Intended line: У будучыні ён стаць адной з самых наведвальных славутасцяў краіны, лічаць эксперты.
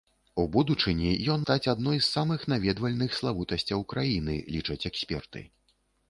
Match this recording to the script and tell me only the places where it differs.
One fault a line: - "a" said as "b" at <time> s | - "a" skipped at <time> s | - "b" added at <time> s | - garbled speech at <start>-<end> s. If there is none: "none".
none